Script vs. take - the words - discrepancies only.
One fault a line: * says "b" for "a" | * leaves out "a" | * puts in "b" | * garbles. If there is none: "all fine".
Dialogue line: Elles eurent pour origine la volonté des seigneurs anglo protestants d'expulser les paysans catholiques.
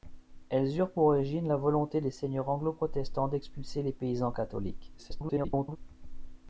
* garbles